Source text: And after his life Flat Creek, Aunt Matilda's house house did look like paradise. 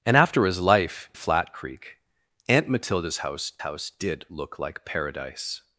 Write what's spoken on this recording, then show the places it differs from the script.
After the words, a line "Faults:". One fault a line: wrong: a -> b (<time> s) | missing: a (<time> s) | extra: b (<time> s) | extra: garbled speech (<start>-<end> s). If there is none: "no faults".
And after his life Flat Creek, Aunt Matilda's house house did look like paradise.
Faults:
no faults